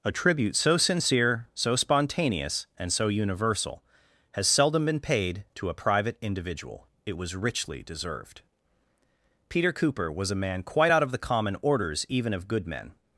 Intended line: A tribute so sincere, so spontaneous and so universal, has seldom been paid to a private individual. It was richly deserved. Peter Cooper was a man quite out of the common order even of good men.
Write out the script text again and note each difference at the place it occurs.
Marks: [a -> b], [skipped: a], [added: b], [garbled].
A tribute so sincere, so spontaneous and so universal, has seldom been paid to a private individual. It was richly deserved. Peter Cooper was a man quite out of the common [order -> orders] even of good men.